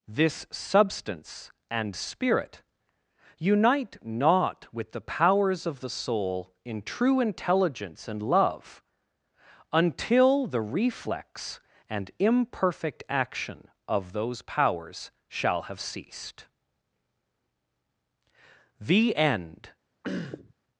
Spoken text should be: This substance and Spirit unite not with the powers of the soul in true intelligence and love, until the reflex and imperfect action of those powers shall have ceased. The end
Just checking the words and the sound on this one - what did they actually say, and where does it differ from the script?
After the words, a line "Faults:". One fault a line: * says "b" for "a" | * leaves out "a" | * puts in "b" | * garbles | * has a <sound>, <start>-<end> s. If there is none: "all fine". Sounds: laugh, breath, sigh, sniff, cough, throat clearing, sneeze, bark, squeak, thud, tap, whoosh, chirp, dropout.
This substance and Spirit unite not with the powers of the soul in true intelligence and love, until the reflex and imperfect action of those powers shall have ceased. The end
Faults:
* has a throat clearing, 20.0-20.5 s